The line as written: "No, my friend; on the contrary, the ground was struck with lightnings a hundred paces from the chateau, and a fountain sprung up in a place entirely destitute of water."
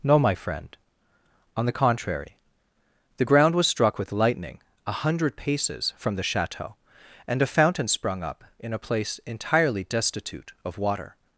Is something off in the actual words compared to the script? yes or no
yes